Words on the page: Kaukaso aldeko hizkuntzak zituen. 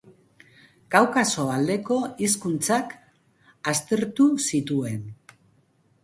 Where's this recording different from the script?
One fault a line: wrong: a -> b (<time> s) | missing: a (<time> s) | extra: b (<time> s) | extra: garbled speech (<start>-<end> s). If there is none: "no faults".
extra: aztertu (3.7 s)